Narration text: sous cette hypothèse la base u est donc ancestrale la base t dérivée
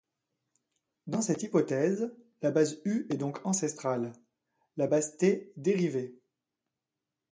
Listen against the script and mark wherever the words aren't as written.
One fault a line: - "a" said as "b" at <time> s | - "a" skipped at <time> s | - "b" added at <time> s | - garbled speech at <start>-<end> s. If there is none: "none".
- "sous" said as "dans" at 1.1 s